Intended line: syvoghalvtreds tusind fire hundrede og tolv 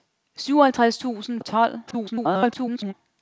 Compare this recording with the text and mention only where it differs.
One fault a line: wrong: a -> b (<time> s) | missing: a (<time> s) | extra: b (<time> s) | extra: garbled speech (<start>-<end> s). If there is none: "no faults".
missing: fire hundrede (1.4 s)
extra: garbled speech (1.9-2.9 s)